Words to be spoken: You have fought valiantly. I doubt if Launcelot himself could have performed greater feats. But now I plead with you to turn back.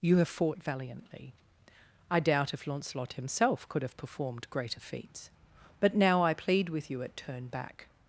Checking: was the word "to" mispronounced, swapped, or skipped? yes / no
yes